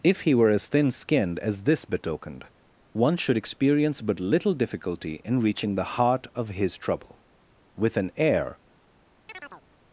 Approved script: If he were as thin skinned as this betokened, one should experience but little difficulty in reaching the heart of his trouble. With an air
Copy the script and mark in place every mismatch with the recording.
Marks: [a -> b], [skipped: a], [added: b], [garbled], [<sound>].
If he were as thin skinned as this betokened, one should experience but little difficulty in reaching the heart of his trouble. With an air [chirp]